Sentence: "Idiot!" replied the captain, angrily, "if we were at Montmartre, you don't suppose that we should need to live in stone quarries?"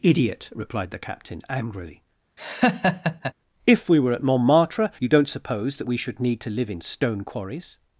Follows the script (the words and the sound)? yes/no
no